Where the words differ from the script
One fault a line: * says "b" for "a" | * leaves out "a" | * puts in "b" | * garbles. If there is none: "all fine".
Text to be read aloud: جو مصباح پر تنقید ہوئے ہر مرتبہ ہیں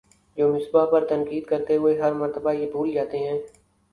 * puts in "کرتے"
* puts in "یہ بھول جاتے"